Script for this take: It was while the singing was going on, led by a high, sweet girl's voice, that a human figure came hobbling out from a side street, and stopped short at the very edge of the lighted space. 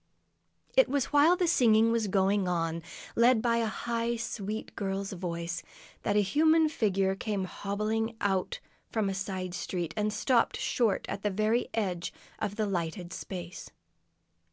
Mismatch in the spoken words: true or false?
false